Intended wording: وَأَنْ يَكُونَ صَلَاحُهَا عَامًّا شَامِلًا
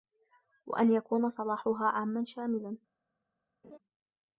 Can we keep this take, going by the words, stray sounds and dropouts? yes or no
no